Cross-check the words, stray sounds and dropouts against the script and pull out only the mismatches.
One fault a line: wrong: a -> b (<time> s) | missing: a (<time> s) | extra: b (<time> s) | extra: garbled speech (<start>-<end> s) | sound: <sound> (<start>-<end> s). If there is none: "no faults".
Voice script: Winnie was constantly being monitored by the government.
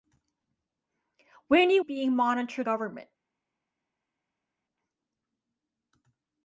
missing: was constantly (1.8 s)
missing: by the (2.7 s)